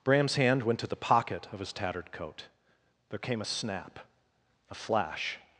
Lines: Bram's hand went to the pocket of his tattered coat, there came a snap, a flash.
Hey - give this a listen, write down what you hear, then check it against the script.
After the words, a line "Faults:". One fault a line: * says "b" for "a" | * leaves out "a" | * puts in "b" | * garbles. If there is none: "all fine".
Bram's hand went to the pocket of his tattered coat, there came a snap, a flash.
Faults:
all fine